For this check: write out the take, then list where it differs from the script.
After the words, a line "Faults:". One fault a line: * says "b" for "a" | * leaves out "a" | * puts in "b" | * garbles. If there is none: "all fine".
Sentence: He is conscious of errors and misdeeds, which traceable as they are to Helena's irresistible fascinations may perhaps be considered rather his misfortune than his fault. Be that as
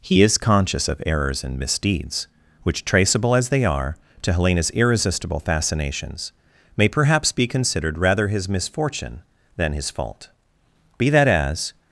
He is conscious of errors and misdeeds, which traceable as they are to Helena's irresistible fascinations may perhaps be considered rather his misfortune than his fault. Be that as
Faults:
all fine